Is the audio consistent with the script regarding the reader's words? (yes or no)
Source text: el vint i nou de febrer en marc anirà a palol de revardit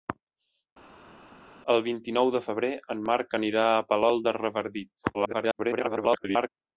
no